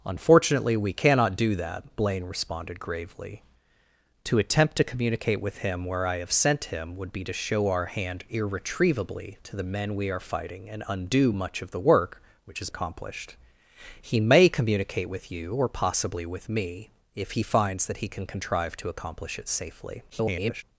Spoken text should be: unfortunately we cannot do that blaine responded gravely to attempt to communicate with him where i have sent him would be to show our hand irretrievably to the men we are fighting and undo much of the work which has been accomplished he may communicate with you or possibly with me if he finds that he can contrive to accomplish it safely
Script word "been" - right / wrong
wrong